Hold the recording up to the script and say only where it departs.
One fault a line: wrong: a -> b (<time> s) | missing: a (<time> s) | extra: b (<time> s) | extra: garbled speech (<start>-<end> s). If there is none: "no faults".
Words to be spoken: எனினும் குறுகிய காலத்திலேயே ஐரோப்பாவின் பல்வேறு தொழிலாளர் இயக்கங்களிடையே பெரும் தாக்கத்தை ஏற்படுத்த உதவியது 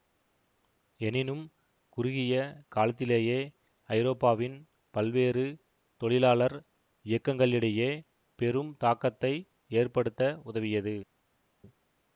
no faults